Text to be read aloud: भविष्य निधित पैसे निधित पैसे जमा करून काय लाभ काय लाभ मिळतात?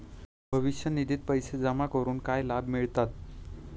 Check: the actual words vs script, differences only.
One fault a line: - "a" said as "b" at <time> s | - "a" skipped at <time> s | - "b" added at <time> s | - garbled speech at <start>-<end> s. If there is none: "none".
- "निधित पैसे" skipped at 1.6 s
- "काय लाभ" skipped at 2.7 s